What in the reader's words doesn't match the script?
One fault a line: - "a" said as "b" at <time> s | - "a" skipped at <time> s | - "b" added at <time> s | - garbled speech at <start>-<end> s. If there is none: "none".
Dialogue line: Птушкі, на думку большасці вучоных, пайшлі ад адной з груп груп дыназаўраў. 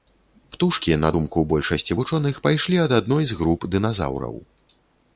- "груп" skipped at 3.6 s